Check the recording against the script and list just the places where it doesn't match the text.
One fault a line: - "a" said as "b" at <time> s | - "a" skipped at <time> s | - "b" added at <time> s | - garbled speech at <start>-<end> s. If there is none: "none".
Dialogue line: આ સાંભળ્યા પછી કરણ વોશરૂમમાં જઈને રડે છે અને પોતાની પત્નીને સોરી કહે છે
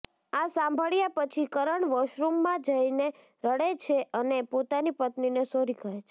none